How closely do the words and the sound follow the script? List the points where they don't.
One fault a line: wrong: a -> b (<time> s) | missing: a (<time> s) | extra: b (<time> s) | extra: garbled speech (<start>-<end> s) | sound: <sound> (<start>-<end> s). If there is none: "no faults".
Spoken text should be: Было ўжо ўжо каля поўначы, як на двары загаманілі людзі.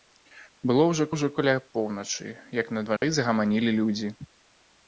sound: dropout (3.0-3.0 s)